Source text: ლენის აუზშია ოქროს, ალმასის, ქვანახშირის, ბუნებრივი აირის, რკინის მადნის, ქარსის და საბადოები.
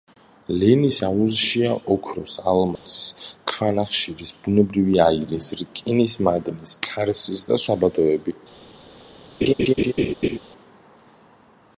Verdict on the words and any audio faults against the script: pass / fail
fail